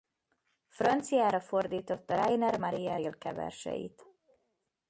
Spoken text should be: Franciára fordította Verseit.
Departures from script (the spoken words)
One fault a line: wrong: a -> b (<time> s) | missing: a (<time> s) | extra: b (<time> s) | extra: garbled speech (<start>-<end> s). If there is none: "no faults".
extra: Rainer Maria Rilke (2.1 s)